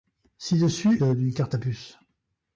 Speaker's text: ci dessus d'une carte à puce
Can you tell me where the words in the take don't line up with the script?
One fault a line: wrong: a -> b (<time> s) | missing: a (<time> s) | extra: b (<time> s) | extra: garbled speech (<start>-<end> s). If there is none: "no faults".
no faults